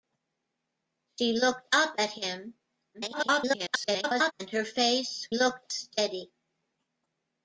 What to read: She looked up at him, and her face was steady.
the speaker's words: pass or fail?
fail